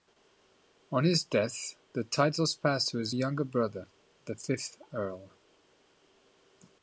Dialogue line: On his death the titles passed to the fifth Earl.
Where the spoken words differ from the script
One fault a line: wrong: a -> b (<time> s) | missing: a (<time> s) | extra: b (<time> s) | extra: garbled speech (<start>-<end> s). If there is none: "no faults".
extra: his younger brother (3.0 s)